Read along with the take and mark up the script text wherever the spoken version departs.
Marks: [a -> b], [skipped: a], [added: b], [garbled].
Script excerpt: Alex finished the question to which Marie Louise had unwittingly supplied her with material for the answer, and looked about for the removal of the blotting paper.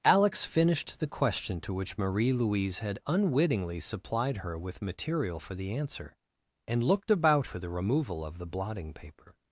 Alex finished the question to which Marie Louise had unwittingly supplied her with material for the answer, and looked about for the removal of the blotting paper.